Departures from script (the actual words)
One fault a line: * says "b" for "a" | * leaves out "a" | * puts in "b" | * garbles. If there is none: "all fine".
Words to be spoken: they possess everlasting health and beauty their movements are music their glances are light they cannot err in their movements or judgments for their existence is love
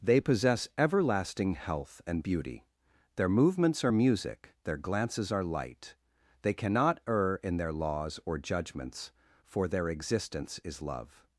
* says "laws" for "movements"